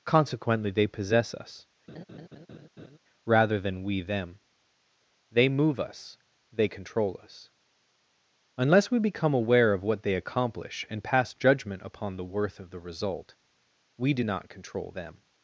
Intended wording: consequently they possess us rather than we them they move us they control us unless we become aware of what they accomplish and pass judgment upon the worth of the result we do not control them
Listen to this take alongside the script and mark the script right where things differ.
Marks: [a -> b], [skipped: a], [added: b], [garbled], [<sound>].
consequently they possess us [laugh] rather than we them they move us they control us unless we become aware of what they accomplish and pass judgment upon the worth of the result we do not control them